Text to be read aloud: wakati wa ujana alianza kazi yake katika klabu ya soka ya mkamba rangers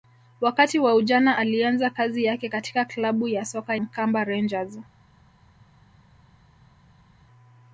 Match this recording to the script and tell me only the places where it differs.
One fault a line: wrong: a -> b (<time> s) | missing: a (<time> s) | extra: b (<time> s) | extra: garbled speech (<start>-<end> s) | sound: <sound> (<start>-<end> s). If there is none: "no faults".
missing: ya (3.8 s)